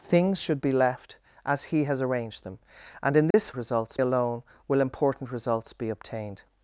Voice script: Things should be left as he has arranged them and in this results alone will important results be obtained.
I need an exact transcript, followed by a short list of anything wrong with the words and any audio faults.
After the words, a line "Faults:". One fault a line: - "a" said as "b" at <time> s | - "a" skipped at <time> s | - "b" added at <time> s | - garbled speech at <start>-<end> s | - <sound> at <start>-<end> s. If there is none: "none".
Things should be left as he has arranged them and in this results alone will important results be obtained.
Faults:
- dropout at 3.3-3.3 s